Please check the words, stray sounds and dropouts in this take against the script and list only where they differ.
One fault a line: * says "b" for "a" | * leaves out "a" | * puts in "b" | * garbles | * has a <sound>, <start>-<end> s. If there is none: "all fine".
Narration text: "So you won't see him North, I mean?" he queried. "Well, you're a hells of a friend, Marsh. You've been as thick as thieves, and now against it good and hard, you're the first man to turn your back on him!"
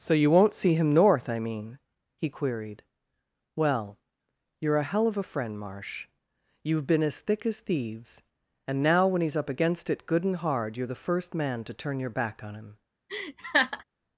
* says "hell" for "hells"
* puts in "when he's up"
* has a laugh, 13.1-13.8 s